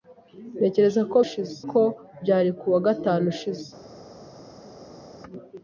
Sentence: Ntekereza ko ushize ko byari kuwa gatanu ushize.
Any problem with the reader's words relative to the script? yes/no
no